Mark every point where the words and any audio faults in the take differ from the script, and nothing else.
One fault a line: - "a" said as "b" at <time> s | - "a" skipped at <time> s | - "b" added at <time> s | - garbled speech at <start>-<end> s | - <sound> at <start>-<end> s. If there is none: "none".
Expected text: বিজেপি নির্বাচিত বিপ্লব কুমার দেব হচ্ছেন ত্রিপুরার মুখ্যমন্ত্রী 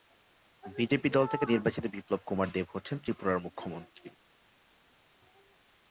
- "দল থেকে" added at 1.1 s